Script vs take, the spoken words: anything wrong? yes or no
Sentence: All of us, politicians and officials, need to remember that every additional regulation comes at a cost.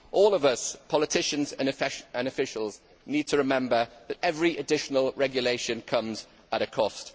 no